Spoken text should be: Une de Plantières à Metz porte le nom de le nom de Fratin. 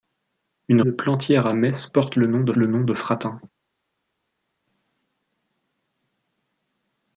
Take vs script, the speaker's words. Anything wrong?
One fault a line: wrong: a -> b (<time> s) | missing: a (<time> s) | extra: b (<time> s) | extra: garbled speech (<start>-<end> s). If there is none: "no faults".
no faults